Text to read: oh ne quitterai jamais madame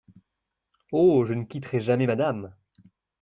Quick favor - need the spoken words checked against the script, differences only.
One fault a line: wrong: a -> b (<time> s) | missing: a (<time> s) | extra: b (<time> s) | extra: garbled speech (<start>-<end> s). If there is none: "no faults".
extra: je (1.2 s)